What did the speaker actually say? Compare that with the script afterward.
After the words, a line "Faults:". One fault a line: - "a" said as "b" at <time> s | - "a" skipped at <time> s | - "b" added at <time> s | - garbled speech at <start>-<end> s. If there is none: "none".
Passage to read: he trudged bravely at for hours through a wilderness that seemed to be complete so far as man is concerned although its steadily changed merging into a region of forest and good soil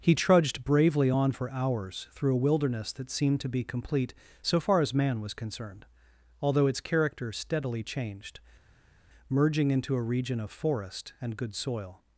he trudged bravely on for hours through a wilderness that seemed to be complete so far as man was concerned although its character steadily changed merging into a region of forest and good soil
Faults:
- "at" said as "on" at 1.1 s
- "is" said as "was" at 5.2 s
- "character" added at 6.8 s